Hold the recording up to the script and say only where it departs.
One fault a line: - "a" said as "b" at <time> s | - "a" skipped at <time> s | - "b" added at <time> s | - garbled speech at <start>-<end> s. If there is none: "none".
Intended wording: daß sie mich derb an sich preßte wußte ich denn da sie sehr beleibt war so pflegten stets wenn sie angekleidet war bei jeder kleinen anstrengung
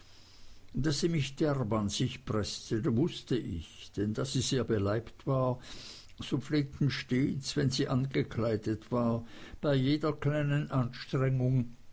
none